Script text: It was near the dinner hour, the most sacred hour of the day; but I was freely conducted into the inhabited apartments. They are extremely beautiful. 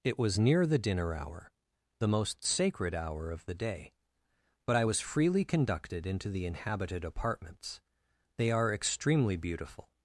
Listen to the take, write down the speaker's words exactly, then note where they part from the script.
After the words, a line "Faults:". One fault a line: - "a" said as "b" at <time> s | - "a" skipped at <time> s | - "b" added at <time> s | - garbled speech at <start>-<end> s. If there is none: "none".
It was near the dinner hour, the most sacred hour of the day; but I was freely conducted into the inhabited apartments. They are extremely beautiful.
Faults:
none